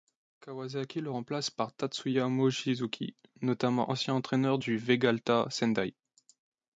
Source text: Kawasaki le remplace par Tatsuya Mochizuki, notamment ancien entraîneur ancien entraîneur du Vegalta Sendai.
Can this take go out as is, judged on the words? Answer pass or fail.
fail